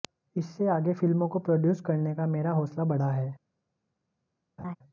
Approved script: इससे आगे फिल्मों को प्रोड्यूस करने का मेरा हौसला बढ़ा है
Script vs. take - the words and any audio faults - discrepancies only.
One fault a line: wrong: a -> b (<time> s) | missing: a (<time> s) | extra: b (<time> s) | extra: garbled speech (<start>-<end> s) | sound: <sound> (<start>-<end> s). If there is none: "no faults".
sound: laugh (4.6-4.8 s)